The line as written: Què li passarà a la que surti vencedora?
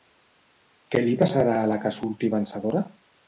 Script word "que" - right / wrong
right